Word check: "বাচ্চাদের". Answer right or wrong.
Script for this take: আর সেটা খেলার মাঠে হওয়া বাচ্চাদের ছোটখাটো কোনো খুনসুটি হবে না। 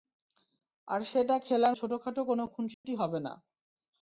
wrong